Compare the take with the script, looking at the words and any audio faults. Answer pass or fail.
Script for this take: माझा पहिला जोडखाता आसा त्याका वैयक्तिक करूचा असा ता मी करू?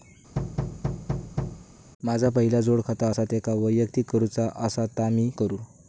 fail